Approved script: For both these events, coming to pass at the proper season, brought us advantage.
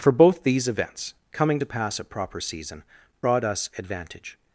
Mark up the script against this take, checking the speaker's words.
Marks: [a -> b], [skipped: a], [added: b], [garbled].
For both these events, coming to pass at [skipped: the] proper season, brought us advantage.